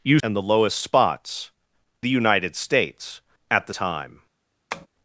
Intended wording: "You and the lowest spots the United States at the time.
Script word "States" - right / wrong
right